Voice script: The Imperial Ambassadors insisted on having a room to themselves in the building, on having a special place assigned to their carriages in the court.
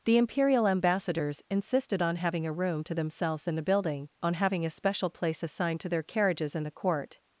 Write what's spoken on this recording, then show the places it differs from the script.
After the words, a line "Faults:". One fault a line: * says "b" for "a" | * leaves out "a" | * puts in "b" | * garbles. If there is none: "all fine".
The Imperial Ambassadors insisted on having a room to themselves in the building, on having a special place assigned to their carriages in the court.
Faults:
all fine